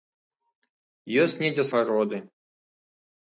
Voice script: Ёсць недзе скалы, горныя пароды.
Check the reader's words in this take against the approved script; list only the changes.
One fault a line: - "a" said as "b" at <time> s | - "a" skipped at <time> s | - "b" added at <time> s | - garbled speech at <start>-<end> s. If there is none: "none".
- "скалы горныя" skipped at 1.7 s